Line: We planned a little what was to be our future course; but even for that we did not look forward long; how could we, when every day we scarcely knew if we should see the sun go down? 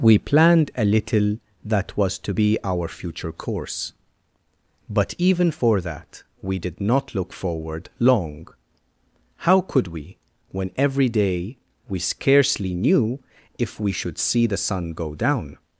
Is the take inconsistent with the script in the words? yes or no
yes